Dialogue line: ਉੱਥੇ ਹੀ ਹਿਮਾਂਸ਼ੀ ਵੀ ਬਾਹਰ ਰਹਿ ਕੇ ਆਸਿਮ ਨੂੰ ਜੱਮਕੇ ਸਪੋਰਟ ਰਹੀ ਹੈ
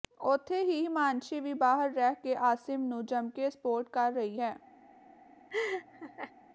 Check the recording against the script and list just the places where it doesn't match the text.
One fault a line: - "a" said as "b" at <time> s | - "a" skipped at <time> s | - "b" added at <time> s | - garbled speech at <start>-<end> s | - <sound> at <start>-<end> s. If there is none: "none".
- "ਕਰ" added at 3.9 s
- laugh at 5.5-6.3 s